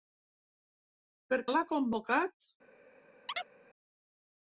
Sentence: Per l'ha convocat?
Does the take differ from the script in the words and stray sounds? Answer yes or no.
yes